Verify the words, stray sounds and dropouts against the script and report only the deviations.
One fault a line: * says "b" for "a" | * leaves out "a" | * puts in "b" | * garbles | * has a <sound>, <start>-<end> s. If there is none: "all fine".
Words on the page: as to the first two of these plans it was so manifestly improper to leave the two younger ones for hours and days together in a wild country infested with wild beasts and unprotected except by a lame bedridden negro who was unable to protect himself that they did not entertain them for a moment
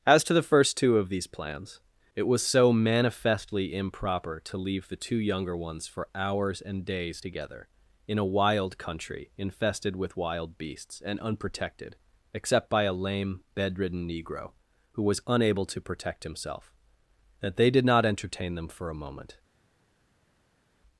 all fine